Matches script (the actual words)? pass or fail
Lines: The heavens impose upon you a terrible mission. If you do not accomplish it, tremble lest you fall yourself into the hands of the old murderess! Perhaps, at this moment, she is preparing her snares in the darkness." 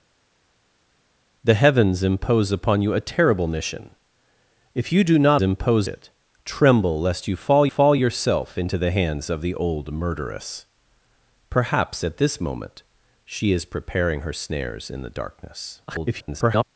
fail